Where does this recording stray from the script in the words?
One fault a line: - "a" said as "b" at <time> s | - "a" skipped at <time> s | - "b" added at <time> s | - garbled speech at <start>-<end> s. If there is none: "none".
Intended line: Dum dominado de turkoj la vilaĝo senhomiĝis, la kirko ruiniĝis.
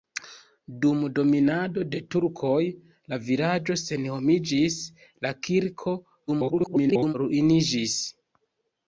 - garbled speech at 6.3-7.1 s